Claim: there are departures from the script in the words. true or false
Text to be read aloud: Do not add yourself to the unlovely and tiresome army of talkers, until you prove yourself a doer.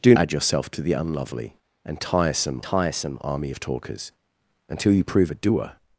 true